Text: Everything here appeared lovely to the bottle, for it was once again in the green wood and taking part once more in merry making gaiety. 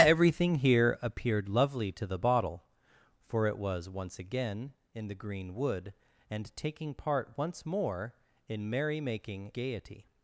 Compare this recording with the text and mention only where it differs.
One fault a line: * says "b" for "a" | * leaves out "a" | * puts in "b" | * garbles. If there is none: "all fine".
all fine